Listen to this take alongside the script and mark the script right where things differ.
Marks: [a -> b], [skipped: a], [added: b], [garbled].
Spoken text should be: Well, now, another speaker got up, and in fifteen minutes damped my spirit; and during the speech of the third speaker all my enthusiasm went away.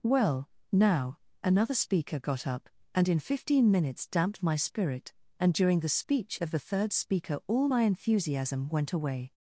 Well, now, another speaker got up, and in fifteen minutes damped my spirit; and during the speech of the third speaker all my enthusiasm went away.